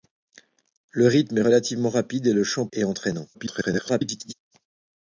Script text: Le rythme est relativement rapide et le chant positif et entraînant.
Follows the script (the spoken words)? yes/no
no